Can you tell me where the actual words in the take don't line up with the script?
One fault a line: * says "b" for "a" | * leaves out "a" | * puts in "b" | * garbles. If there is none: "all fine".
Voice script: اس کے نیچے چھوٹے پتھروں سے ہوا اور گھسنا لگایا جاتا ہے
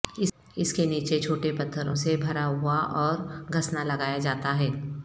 * puts in "بھرا"